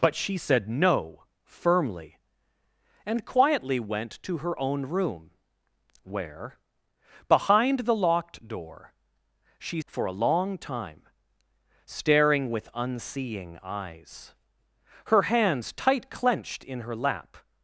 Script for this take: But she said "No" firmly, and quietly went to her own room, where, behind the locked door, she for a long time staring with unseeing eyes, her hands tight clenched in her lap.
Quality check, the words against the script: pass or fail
pass